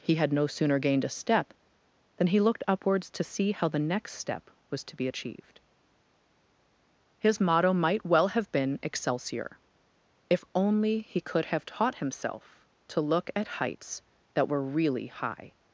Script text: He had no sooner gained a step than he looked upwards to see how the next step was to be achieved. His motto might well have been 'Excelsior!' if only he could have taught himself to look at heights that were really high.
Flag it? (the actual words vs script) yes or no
no